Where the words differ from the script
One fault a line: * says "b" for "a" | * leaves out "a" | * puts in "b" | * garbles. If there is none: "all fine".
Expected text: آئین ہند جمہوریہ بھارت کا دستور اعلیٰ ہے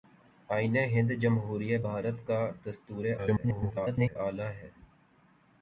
* garbles